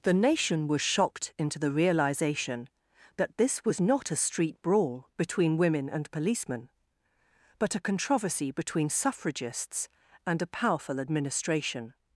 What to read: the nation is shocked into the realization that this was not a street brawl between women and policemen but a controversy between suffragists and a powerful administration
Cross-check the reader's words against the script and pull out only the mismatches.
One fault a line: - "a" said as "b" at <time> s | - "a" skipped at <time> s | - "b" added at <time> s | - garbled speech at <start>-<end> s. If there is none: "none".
- "is" said as "was" at 0.7 s